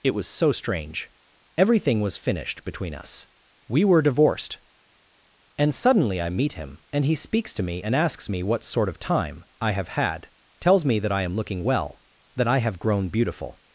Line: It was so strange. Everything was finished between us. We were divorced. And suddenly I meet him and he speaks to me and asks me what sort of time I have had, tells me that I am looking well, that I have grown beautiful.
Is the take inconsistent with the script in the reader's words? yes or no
no